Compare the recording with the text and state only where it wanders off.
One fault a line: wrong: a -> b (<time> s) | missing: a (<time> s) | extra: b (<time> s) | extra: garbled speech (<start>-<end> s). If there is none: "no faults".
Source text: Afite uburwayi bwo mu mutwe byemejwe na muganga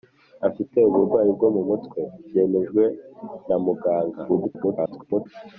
extra: garbled speech (4.3-5.3 s)